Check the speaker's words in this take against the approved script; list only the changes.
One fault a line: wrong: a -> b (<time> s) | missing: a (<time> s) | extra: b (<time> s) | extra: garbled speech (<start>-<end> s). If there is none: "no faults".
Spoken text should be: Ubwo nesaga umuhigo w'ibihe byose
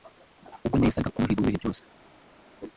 no faults